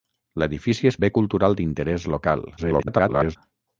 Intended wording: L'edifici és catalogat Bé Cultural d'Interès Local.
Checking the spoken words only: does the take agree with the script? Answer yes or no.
no